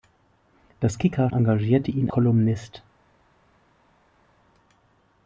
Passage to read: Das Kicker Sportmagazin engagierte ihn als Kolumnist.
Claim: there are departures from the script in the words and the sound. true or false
true